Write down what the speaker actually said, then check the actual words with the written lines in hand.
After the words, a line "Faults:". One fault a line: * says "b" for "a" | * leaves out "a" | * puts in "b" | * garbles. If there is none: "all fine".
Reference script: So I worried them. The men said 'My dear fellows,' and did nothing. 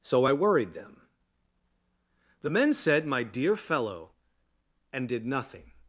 So I worried them. The men said 'My dear fellow,' and did nothing.
Faults:
* says "fellow" for "fellows"